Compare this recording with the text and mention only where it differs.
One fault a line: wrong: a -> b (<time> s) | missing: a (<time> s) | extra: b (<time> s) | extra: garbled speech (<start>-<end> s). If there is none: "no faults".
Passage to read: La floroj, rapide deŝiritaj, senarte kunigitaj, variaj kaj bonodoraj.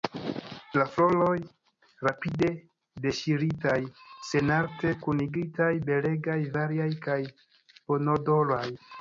extra: belegaj (5.9 s)